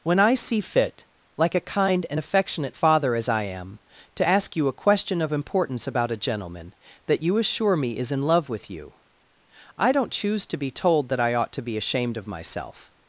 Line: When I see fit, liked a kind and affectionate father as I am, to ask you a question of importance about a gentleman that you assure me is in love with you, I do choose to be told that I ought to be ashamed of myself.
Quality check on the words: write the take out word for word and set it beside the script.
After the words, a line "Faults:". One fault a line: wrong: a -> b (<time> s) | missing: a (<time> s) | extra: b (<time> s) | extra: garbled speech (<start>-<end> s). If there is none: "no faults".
When I see fit, like a kind and affectionate father as I am, to ask you a question of importance about a gentleman that you assure me is in love with you, I don't choose to be told that I ought to be ashamed of myself.
Faults:
wrong: liked -> like (1.4 s)
wrong: do -> don't (9.9 s)